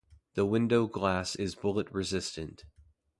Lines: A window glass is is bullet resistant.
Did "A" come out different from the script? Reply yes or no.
yes